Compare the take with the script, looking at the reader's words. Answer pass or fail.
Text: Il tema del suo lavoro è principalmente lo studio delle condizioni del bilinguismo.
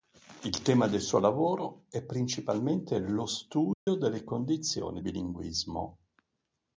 fail